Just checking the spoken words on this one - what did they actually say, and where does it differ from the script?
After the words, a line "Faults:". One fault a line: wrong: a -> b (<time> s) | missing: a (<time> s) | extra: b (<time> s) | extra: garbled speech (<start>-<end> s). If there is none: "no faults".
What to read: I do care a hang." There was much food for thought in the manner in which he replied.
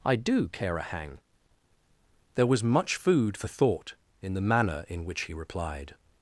I do care a hang." There was much food for thought in the manner in which he replied.
Faults:
no faults